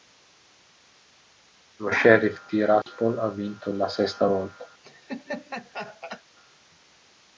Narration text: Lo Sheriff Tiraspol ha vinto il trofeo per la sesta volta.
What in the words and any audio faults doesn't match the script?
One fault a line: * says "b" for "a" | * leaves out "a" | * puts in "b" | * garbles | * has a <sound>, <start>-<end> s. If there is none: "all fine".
* has a dropout, 2.8-2.9 s
* leaves out "il trofeo per"
* has a laugh, 4.8-6.2 s